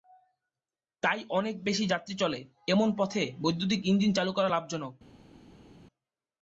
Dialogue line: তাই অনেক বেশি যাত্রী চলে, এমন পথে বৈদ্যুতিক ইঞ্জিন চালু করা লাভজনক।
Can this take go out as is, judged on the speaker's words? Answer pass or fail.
pass